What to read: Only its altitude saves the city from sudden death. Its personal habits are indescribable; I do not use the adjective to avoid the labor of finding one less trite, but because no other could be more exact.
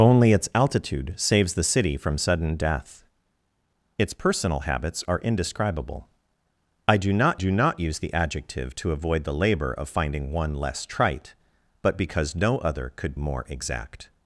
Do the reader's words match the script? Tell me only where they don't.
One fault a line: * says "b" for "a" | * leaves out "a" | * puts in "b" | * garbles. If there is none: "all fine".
* puts in "do not"
* leaves out "be"